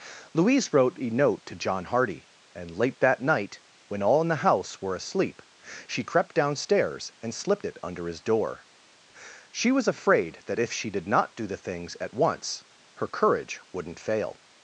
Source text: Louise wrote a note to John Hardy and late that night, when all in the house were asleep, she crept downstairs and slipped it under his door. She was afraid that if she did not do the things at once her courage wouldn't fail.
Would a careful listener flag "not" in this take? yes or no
no